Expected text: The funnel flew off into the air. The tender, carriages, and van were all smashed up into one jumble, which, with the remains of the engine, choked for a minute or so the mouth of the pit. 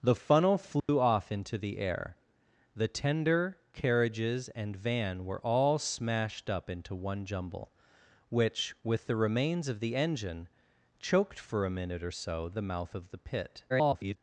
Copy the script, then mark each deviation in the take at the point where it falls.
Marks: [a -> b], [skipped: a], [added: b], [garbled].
The funnel flew off into the air. The tender, carriages, and van were all smashed up into one jumble, which, with the remains of the engine, choked for a minute or so the mouth of the pit. [garbled]